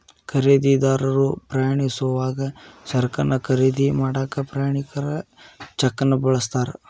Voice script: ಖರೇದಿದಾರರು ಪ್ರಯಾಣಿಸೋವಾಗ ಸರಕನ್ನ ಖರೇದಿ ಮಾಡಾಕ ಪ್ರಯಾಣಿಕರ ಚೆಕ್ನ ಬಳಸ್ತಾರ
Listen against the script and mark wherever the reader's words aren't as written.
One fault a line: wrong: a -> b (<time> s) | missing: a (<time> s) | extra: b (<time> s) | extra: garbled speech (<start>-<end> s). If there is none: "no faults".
no faults